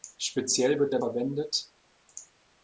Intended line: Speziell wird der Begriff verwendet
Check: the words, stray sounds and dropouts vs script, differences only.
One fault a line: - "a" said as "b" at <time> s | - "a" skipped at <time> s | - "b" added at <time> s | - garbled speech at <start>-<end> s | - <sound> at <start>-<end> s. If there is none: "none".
- "Begriff" skipped at 1.0 s